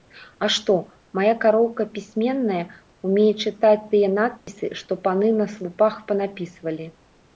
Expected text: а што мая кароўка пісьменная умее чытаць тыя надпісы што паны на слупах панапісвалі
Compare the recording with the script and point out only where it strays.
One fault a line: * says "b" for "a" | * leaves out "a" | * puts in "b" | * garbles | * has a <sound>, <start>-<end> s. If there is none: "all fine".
* has a dropout, 4.4-4.5 s